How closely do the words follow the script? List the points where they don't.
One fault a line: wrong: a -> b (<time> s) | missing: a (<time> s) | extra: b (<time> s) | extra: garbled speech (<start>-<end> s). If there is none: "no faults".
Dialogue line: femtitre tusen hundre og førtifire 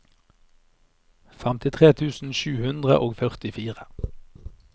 extra: sju (2.4 s)